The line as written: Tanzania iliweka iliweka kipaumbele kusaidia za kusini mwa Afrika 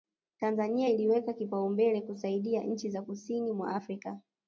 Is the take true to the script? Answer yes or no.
no